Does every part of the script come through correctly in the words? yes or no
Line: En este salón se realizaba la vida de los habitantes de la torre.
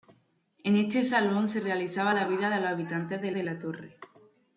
no